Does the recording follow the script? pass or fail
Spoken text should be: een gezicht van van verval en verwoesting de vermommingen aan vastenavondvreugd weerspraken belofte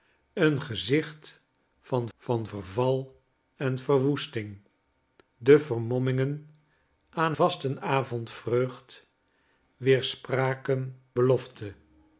pass